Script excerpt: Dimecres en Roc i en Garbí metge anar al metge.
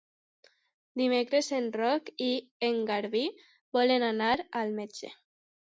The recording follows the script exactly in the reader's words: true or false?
false